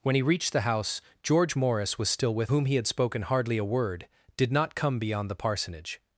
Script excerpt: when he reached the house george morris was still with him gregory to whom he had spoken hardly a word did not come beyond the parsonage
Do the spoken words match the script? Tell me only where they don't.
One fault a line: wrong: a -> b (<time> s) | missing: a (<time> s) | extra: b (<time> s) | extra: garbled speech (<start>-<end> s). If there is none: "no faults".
missing: him gregory to (2.5 s)